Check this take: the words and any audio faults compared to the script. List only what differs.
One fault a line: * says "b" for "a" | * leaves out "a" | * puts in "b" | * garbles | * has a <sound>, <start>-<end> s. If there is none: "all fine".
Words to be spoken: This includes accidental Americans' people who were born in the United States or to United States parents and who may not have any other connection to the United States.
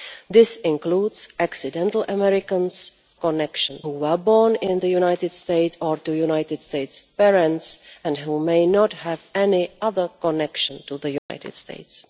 * says "connection" for "people"
* has a dropout, 11.2-11.3 s